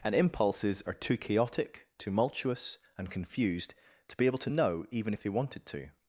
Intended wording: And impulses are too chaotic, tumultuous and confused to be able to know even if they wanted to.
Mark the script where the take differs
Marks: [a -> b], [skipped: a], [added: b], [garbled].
And impulses are too chaotic, tumultuous and confused to be able to know even if they wanted to.